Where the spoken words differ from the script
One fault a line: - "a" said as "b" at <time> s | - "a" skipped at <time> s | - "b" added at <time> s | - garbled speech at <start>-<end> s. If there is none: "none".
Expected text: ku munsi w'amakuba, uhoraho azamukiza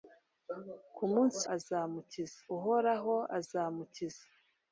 - "w'amakuba" said as "azamukiza" at 1.5 s